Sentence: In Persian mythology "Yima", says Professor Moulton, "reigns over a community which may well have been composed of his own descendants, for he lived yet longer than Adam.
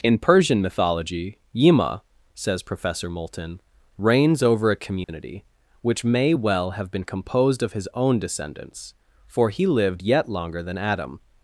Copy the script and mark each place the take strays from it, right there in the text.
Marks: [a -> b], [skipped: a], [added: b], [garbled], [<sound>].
In Persian mythology "Yima", says Professor Moulton, "reigns over a community [dropout] which may well have been composed of his own descendants, for he lived yet longer than Adam.